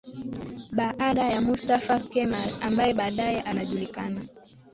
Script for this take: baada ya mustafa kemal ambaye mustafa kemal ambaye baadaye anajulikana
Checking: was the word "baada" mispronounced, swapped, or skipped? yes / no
no